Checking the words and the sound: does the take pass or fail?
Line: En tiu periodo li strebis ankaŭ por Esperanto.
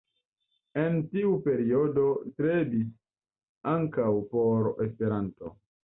fail